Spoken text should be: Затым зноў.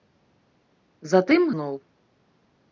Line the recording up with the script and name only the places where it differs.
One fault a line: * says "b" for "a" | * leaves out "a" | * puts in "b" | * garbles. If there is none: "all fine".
all fine